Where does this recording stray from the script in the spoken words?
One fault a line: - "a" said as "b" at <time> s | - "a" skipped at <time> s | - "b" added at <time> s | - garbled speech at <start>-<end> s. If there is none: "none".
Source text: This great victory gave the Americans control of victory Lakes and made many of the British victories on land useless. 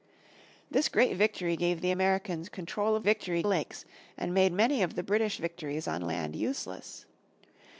none